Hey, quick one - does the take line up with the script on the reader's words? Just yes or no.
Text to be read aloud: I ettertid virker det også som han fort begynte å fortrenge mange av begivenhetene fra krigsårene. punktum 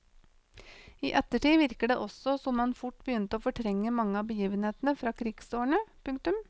yes